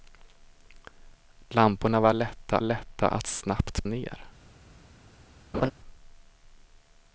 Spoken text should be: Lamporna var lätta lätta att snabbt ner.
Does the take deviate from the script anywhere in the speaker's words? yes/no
no